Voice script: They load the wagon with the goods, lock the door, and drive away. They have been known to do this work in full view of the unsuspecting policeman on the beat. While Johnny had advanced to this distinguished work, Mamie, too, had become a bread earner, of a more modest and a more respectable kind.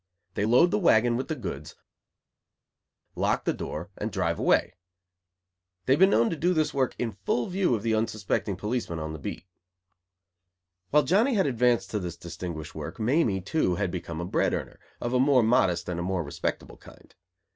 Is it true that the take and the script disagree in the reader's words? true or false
false